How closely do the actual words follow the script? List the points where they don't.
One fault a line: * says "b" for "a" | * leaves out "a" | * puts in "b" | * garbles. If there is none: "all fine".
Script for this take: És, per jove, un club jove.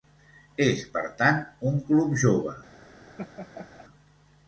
* says "tant" for "jove"